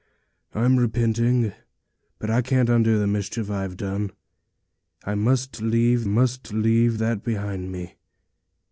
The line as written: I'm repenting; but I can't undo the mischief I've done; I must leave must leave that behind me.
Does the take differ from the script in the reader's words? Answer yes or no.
no